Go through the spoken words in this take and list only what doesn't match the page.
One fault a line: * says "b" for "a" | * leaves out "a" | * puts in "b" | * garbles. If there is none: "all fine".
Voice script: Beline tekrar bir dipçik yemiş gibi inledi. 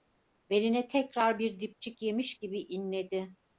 all fine